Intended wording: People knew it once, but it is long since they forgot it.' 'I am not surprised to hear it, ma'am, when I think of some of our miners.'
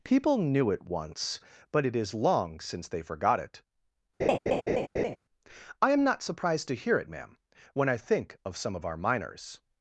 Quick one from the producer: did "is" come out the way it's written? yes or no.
yes